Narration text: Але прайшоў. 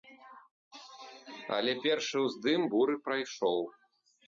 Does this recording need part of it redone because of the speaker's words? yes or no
yes